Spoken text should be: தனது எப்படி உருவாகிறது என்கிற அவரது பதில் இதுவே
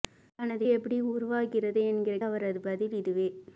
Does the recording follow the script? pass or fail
pass